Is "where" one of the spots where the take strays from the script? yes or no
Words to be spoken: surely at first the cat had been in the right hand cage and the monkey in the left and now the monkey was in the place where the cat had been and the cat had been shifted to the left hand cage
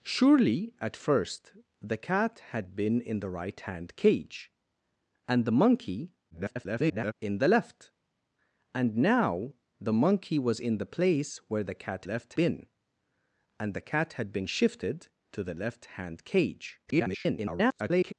no